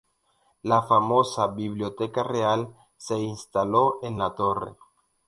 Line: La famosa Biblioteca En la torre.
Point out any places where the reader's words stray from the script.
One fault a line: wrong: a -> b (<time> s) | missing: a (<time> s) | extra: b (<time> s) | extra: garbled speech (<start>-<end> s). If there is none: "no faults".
extra: Real se instaló (2.2 s)